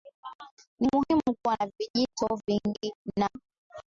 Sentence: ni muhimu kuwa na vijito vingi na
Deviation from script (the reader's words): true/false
false